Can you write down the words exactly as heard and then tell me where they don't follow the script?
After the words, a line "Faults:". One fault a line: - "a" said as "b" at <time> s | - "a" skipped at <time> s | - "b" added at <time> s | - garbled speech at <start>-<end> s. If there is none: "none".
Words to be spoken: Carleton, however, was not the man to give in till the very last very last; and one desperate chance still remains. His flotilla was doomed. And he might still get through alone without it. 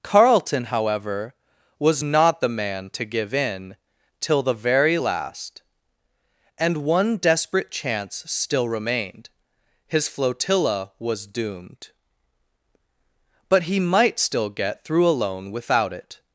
Carleton, however, was not the man to give in till the very last; and one desperate chance still remained. His flotilla was doomed. But he might still get through alone without it.
Faults:
- "very last" skipped at 5.6 s
- "remains" said as "remained" at 8.7 s
- "And" said as "But" at 13.5 s